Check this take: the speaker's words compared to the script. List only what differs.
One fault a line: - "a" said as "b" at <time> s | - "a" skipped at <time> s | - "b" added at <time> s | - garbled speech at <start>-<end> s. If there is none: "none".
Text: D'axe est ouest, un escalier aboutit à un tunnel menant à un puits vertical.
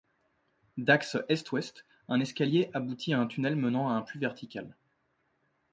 none